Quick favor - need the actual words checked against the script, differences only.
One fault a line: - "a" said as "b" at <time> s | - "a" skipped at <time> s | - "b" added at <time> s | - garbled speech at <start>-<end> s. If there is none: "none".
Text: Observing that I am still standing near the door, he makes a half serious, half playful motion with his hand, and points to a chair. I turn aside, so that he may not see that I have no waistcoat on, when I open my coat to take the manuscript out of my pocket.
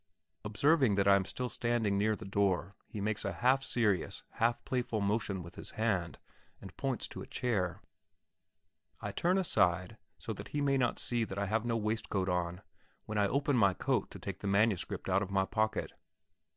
none